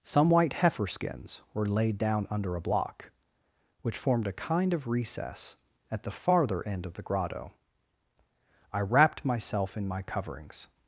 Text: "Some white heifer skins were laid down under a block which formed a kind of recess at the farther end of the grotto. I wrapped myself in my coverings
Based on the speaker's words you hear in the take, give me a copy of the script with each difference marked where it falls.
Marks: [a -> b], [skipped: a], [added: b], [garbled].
"Some white heifer skins were laid down under a block which formed a kind of recess at the farther end of the grotto. I wrapped myself in my coverings